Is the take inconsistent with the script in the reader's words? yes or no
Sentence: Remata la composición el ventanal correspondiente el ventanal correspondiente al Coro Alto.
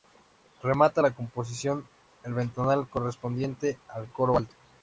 yes